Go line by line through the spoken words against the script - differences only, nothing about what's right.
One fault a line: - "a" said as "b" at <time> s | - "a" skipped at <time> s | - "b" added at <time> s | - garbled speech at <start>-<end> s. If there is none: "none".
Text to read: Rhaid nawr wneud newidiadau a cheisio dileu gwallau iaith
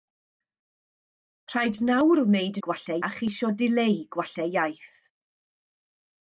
- "newidiadau" said as "gwallau" at 2.7 s